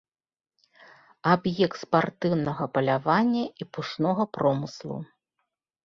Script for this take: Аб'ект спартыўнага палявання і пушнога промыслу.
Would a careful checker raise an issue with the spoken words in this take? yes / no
no